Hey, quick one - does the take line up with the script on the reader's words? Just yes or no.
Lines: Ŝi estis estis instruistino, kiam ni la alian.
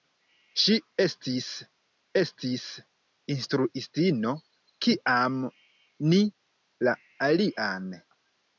yes